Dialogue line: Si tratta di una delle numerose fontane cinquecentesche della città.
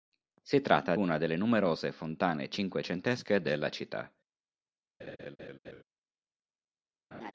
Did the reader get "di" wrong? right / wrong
wrong